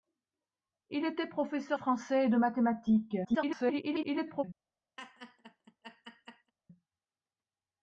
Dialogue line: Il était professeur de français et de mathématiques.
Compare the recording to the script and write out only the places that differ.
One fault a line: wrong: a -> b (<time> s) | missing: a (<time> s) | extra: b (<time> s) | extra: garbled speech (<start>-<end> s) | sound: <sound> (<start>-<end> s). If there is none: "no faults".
missing: de (1.8 s)
extra: garbled speech (3.2-4.4 s)
sound: laugh (5.0-6.5 s)